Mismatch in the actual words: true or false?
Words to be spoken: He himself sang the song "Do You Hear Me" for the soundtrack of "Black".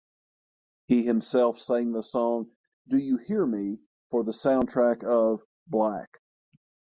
false